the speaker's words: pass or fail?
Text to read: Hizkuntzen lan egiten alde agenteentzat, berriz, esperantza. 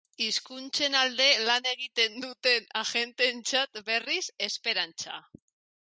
fail